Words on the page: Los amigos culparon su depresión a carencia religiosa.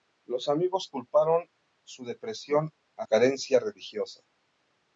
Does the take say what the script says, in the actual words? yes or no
yes